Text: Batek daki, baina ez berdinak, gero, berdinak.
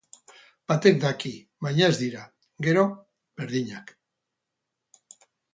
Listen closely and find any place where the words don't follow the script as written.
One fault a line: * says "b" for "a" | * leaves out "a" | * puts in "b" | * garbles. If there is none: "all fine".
* says "dira" for "berdinak"